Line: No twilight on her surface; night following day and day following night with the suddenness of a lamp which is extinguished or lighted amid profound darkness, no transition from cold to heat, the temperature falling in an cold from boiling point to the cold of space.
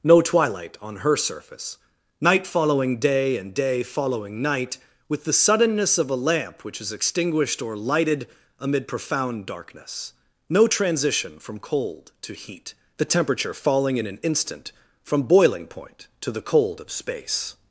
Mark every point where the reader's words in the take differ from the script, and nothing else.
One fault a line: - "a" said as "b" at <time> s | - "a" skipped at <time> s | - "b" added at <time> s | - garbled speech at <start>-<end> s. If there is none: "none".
- "cold" said as "instant" at 14.2 s